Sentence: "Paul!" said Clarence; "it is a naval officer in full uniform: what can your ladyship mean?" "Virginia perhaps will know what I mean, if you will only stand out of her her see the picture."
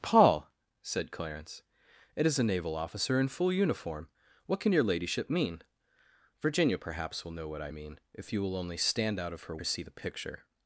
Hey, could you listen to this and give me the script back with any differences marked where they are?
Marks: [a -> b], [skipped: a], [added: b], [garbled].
"Paul!" said Clarence; "it is a naval officer in full uniform: what can your ladyship mean?" "Virginia perhaps will know what I mean, if you will only stand out of her her see the picture."